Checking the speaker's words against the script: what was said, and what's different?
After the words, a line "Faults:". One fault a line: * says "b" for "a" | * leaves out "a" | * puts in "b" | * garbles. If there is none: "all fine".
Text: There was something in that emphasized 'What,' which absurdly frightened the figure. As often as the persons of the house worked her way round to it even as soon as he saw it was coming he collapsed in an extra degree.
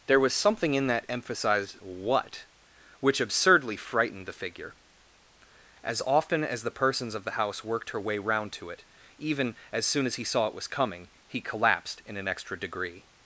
There was something in that emphasized 'What,' which absurdly frightened the figure. As often as the persons of the house worked her way round to it even as soon as he saw it was coming he collapsed in an extra degree.
Faults:
all fine